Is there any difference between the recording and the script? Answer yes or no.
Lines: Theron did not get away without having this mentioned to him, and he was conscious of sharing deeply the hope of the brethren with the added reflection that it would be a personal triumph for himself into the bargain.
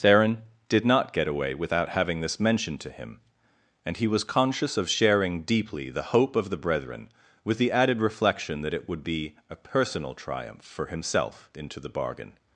no